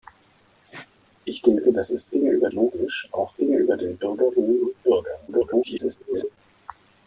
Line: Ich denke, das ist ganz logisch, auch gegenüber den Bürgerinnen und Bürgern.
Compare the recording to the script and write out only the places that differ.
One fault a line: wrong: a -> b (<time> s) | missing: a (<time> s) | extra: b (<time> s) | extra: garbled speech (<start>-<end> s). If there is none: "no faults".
wrong: ganz -> gegenüber (2.1 s)
extra: garbled speech (5.3-6.4 s)